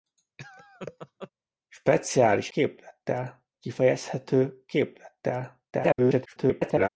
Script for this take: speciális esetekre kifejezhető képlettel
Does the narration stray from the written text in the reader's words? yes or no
yes